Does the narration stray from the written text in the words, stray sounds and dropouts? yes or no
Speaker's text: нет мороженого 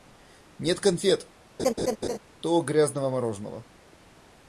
yes